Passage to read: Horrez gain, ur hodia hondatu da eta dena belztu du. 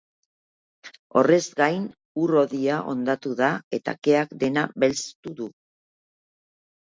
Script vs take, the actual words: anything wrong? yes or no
yes